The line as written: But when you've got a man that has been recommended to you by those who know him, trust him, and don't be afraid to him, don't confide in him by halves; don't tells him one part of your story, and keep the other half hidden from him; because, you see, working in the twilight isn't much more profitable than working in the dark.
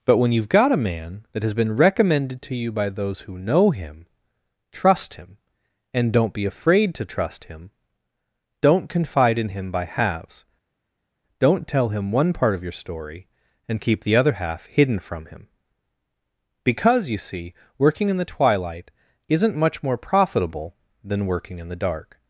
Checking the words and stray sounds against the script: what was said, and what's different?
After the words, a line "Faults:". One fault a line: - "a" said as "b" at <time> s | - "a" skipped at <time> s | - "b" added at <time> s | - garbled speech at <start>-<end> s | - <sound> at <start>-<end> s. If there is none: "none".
But when you've got a man that has been recommended to you by those who know him, trust him, and don't be afraid to trust him, don't confide in him by halves; don't tell him one part of your story, and keep the other half hidden from him; because, you see, working in the twilight isn't much more profitable than working in the dark.
Faults:
- "trust" added at 7.1 s
- "tells" said as "tell" at 11.7 s